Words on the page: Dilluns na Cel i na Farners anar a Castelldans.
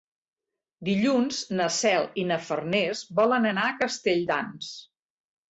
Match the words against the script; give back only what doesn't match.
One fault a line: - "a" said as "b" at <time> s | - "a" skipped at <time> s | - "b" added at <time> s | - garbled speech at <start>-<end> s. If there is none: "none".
- "volen" added at 3.2 s